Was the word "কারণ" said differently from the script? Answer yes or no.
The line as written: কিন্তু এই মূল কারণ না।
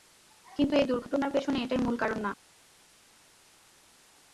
no